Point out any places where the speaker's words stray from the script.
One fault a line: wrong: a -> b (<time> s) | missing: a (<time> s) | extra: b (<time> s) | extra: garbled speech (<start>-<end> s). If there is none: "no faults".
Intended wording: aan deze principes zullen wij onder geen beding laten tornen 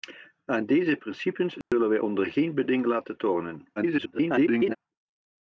extra: garbled speech (3.8-4.8 s)